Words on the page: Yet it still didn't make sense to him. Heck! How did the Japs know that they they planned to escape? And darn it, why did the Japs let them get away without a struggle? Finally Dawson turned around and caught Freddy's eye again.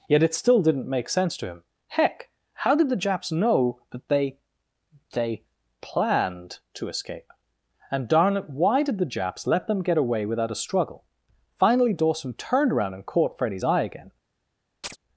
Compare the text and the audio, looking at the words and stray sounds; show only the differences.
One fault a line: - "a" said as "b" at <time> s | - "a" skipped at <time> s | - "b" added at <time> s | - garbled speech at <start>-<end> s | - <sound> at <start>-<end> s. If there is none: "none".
- chirp at 14.8-15.0 s